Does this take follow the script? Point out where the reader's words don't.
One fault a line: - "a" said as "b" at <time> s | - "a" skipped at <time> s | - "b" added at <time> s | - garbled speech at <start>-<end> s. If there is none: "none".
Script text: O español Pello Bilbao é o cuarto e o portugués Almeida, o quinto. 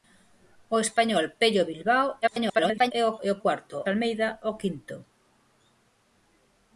- garbled speech at 2.2-2.9 s
- "cuarto" skipped at 3.2 s
- "portugués" said as "cuarto" at 3.4 s